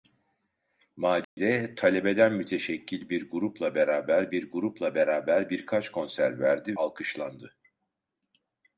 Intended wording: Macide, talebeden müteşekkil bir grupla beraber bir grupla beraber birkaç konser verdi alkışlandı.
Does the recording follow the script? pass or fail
pass